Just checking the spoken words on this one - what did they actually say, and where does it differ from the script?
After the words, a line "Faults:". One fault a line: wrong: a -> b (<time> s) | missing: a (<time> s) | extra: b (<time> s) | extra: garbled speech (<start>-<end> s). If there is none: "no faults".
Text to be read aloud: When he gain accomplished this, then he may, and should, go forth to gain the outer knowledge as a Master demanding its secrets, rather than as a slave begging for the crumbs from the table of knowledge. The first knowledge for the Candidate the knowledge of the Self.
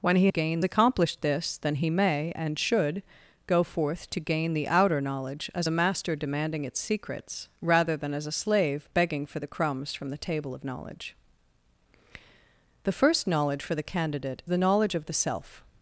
When he gain accomplished this, then he may, and should, go forth to gain the outer knowledge as a Master demanding its secrets, rather than as a slave begging for the crumbs from the table of knowledge. The first knowledge for the Candidate the knowledge of the Self.
Faults:
no faults